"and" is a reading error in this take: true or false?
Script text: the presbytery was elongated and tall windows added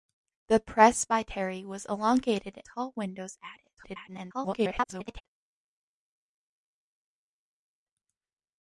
true